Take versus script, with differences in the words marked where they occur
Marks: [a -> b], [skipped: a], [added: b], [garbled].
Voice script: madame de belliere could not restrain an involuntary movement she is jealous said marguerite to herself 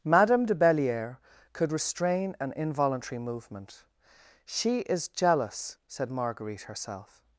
madame de belliere could [skipped: not] restrain an involuntary movement she is jealous said marguerite [skipped: to] herself